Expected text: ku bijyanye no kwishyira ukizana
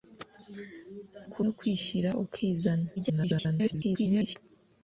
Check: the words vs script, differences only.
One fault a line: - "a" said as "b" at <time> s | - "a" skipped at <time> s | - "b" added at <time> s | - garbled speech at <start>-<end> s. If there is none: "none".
- "bijyanye" skipped at 1.4 s
- garbled speech at 3.0-4.4 s